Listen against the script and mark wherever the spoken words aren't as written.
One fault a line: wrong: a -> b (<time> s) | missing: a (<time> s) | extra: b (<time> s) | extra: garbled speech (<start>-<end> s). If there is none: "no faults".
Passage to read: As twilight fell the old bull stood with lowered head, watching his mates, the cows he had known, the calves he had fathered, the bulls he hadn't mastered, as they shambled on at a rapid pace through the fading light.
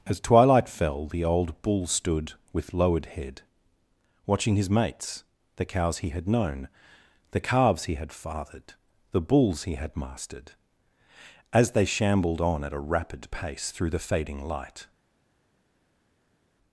wrong: hadn't -> had (9.7 s)